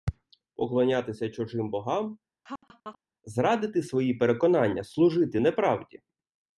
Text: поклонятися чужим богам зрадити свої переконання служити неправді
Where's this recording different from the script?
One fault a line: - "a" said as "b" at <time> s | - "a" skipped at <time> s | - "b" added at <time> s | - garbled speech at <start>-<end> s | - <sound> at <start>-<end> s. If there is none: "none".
- laugh at 2.4-3.0 s